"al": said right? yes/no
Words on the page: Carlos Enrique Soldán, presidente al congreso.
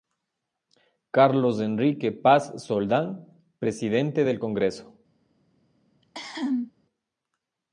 no